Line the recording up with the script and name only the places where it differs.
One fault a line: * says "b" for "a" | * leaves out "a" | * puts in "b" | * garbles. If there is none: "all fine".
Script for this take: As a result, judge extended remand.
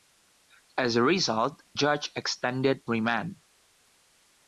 all fine